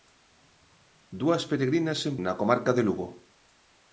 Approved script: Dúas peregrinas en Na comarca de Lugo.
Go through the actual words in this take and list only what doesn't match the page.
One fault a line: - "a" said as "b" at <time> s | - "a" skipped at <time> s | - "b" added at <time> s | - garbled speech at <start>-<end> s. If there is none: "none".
none